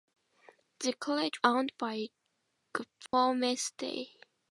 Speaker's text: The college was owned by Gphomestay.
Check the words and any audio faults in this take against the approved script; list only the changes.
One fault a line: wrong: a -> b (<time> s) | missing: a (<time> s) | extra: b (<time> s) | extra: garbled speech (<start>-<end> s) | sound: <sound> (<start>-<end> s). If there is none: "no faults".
missing: was (1.4 s)
sound: dropout (3.1-3.1 s)